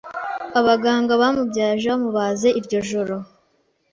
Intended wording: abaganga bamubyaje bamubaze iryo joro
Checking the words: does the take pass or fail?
pass